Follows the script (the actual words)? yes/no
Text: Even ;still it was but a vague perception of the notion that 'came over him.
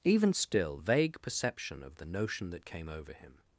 no